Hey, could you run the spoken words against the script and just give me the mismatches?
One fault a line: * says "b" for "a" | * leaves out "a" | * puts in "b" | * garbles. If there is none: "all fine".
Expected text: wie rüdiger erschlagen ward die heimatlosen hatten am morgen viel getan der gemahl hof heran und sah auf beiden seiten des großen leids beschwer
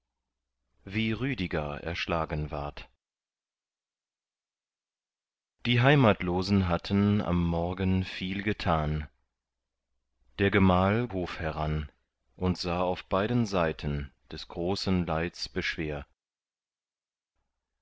all fine